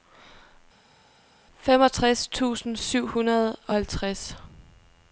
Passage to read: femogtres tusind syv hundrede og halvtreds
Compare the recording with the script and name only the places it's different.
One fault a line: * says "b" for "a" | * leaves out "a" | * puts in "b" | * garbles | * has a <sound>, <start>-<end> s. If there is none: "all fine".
all fine